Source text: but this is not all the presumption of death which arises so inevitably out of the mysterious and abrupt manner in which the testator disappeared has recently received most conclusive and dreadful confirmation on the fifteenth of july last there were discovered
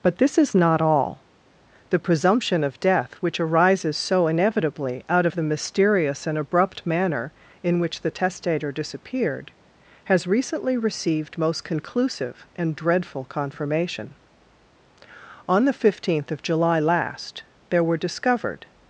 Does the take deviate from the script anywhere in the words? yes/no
no